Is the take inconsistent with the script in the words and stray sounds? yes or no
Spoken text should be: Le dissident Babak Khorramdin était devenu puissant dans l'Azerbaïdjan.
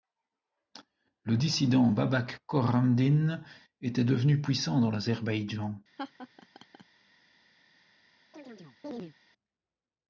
yes